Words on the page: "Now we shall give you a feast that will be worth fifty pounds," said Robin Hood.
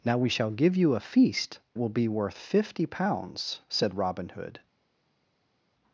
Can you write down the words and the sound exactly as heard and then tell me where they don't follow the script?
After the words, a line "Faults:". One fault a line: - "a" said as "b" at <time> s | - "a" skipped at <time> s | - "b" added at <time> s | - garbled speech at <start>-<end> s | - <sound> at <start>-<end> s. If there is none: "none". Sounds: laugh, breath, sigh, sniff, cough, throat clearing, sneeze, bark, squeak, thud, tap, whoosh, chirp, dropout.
"Now we shall give you a feast will be worth fifty pounds," said Robin Hood.
Faults:
- "that" skipped at 1.6 s